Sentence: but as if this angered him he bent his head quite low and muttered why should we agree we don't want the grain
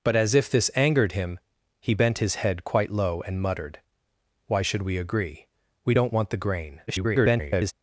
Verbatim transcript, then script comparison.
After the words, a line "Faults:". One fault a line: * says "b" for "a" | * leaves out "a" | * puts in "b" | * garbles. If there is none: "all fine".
but as if this angered him he bent his head quite low and muttered why should we agree we don't want the grain [garbled]
Faults:
* garbles